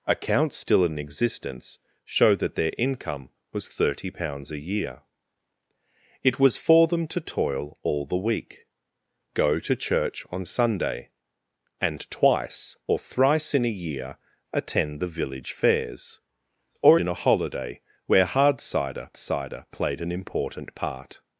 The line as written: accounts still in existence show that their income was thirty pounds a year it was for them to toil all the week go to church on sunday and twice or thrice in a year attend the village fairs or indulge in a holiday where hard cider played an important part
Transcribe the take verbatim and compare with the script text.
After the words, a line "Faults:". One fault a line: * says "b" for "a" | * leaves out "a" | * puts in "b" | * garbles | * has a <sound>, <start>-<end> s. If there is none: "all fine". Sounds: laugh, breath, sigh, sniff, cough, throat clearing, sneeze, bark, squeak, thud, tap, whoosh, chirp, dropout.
accounts still in existence show that their income was thirty pounds a year it was for them to toil all the week go to church on sunday and twice or thrice in a year attend the village fairs or in a holiday where hard cider cider played an important part
Faults:
* leaves out "indulge"
* puts in "cider"